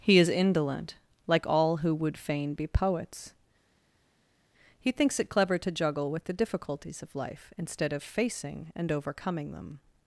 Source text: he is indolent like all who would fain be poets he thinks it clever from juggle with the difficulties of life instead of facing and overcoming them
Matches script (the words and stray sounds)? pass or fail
fail